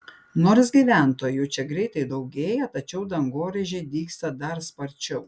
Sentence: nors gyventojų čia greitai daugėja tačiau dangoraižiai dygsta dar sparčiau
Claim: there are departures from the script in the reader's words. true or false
false